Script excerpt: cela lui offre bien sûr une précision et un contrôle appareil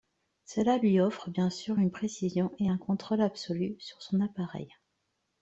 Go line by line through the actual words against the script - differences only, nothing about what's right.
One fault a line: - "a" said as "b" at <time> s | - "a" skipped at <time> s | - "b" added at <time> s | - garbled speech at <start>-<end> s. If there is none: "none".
- "absolu sur son" added at 3.2 s